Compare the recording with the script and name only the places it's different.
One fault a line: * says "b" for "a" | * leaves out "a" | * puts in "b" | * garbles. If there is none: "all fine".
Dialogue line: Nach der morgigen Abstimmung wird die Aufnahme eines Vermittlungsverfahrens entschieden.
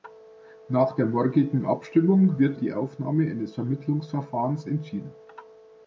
all fine